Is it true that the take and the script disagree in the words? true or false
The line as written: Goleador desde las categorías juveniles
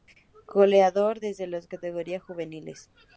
false